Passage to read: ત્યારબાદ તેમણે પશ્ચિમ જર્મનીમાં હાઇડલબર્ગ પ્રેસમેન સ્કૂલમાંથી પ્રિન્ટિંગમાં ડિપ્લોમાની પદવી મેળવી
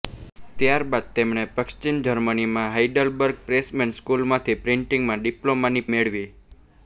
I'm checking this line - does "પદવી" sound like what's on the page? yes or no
no